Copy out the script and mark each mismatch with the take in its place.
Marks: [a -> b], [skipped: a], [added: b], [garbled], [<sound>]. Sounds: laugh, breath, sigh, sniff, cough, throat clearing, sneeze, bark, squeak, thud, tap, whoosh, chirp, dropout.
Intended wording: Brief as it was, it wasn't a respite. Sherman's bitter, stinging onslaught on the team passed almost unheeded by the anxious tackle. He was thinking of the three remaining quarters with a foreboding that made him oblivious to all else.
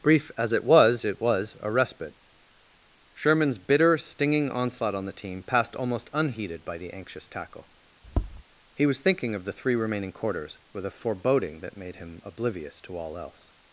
Brief as it was, it [wasn't -> was] a respite. Sherman's bitter, stinging onslaught on the team passed almost unheeded by the anxious tackle. [tap] He was thinking of the three remaining quarters with a foreboding that made him oblivious to all else.